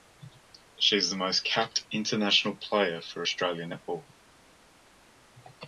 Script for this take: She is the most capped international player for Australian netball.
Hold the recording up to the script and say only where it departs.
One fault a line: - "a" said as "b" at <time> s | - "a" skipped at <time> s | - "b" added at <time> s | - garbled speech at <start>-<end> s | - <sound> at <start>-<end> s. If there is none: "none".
none